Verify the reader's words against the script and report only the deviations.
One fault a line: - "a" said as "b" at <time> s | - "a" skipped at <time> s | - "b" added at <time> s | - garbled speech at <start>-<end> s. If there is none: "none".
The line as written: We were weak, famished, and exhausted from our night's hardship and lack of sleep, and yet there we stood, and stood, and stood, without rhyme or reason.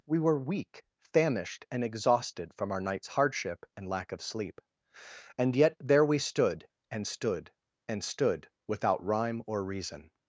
none